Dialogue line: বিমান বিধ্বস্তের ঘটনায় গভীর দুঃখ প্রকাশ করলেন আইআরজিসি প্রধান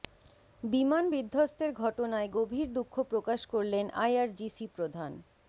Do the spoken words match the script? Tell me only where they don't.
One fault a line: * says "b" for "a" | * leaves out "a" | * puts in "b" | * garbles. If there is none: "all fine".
all fine